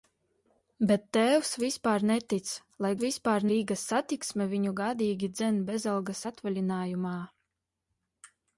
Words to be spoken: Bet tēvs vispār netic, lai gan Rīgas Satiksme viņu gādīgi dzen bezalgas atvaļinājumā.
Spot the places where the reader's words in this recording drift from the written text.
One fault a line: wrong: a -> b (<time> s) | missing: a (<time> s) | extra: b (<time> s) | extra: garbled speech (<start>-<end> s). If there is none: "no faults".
wrong: gan -> vispār (3.0 s)